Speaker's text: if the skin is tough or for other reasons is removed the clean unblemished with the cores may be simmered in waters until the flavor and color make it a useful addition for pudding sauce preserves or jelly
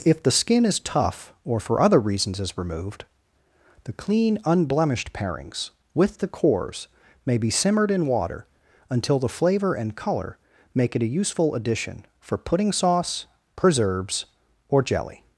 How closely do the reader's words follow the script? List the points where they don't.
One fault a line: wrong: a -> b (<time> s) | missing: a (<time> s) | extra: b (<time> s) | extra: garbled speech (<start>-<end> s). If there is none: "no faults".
extra: parings (5.1 s)
wrong: waters -> water (8.1 s)